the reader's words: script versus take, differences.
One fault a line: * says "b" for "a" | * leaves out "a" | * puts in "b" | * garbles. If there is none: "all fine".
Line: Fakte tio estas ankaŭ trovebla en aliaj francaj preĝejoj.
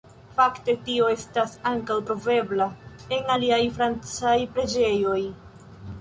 all fine